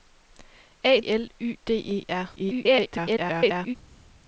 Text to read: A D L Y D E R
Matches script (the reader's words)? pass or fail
fail